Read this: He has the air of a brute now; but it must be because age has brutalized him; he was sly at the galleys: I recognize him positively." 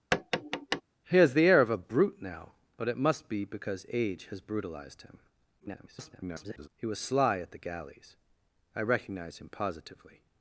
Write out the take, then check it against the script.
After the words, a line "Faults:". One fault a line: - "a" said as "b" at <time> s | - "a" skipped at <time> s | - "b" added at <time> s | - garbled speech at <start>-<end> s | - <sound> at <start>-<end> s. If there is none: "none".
He has the air of a brute now; but it must be because age has brutalized him; [garbled] he was sly at the galleys: I recognize him positively."
Faults:
- tap at 0.1-0.8 s
- garbled speech at 5.6-6.7 s